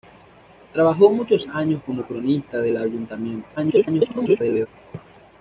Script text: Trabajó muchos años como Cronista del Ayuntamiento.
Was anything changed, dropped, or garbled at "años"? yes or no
no